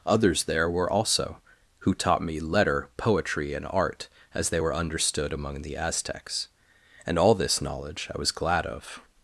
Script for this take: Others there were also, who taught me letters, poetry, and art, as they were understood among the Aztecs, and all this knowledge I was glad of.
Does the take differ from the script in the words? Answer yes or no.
yes